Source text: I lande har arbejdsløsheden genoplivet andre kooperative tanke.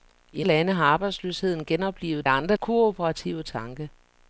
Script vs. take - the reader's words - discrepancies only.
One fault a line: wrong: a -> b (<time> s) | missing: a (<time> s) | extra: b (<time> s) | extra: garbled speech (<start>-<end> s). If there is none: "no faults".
no faults